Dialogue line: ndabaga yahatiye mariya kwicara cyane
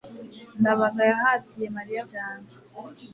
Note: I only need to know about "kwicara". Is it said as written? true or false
false